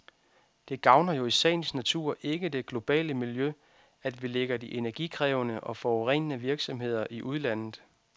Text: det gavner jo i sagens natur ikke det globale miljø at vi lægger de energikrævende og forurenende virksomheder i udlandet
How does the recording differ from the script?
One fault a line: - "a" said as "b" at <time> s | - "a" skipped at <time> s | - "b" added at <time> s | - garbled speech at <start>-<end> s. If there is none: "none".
none